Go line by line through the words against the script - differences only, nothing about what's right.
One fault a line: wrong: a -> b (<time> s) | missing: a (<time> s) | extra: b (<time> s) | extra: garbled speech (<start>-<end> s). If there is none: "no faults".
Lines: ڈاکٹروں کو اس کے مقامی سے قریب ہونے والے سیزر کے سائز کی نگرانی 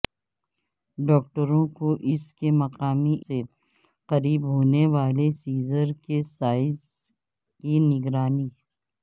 no faults